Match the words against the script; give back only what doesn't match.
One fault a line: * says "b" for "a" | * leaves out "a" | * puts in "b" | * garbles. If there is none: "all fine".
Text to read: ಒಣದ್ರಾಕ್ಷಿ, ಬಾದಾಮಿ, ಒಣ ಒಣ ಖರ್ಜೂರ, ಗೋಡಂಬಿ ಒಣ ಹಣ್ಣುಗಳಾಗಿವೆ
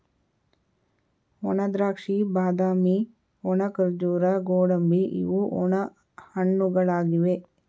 * leaves out "ಒಣ"
* puts in "ಇವು"